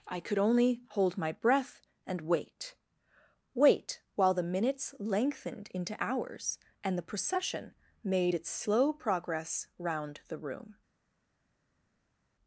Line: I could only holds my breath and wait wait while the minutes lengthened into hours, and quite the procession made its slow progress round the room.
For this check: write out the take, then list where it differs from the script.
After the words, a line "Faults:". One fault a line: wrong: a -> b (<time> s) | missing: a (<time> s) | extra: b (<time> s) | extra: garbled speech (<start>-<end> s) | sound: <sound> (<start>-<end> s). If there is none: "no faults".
I could only hold my breath and wait wait while the minutes lengthened into hours, and the procession made its slow progress round the room.
Faults:
wrong: holds -> hold (0.9 s)
missing: quite (7.0 s)